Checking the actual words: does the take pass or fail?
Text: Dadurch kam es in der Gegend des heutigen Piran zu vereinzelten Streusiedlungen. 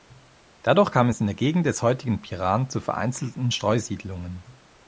pass